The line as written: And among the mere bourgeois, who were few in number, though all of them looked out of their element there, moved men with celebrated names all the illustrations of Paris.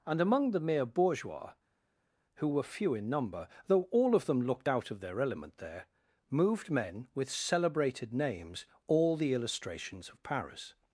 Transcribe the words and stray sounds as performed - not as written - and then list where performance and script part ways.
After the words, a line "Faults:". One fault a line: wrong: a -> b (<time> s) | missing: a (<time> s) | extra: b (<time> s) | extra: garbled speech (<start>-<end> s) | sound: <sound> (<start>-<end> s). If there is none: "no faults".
And among the mere bourgeois, who were few in number, though all of them looked out of their element there, moved men with celebrated names all the illustrations of Paris.
Faults:
no faults